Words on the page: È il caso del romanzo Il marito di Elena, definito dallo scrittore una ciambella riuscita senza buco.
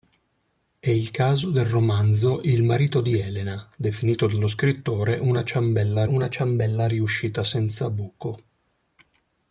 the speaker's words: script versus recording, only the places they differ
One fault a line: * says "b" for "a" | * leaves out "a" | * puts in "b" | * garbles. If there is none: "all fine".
* puts in "una ciambella"